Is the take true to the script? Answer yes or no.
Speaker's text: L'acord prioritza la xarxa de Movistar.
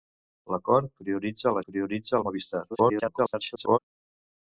no